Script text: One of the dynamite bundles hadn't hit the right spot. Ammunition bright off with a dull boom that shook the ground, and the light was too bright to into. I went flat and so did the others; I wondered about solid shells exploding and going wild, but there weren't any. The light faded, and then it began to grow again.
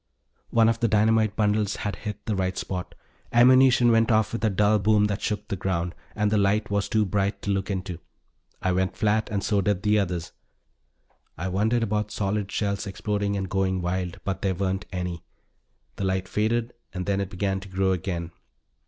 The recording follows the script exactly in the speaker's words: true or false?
false